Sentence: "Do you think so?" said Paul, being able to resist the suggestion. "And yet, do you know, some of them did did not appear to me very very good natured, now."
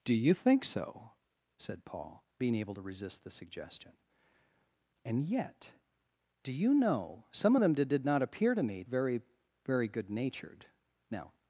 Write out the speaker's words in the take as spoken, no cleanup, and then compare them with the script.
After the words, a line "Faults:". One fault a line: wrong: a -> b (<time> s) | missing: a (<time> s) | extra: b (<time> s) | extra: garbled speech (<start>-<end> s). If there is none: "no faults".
"Do you think so?" said Paul, being able to resist the suggestion. "And yet, do you know, some of them did did not appear to me very very good natured, now."
Faults:
no faults